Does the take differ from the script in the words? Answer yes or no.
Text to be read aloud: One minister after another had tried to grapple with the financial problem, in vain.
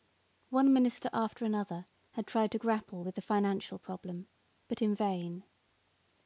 yes